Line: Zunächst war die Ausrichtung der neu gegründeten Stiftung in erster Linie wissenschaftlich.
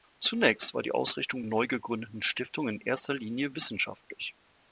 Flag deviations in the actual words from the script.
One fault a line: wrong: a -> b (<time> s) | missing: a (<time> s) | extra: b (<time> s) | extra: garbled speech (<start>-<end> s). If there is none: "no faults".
missing: der (1.4 s)